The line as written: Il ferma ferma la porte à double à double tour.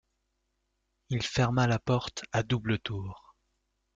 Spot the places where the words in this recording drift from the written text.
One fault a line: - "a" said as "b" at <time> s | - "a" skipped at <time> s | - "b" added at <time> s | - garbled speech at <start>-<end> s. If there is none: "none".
- "ferma" skipped at 1.7 s
- "à double" skipped at 2.8 s